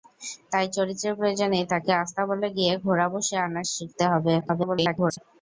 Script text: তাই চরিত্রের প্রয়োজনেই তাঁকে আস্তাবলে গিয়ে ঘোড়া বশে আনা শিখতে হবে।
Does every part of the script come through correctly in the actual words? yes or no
no